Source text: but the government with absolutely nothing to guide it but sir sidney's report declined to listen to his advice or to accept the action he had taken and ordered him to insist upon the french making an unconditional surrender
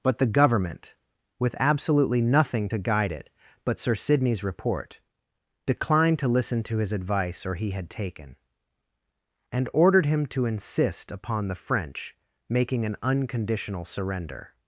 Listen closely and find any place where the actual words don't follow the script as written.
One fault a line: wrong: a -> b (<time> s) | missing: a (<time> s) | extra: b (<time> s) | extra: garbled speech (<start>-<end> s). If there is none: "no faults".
missing: to accept the action (7.5 s)